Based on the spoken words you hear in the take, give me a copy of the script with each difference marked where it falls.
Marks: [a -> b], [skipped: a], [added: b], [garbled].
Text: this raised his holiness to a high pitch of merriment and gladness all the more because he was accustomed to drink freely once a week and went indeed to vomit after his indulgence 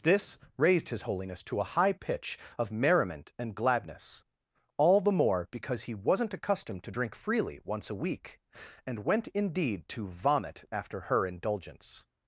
this raised his holiness to a high pitch of merriment and gladness all the more because he [was -> wasn't] accustomed to drink freely once a week and went indeed to vomit after [his -> her] indulgence